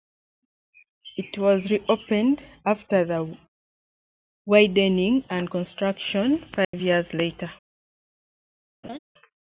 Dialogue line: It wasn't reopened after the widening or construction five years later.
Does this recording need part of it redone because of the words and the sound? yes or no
yes